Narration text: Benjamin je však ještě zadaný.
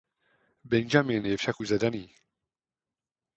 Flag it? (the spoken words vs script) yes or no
yes